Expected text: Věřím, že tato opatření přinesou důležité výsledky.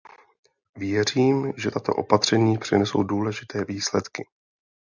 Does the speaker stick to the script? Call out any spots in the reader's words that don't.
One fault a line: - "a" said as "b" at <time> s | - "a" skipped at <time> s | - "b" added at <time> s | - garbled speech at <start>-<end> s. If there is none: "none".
none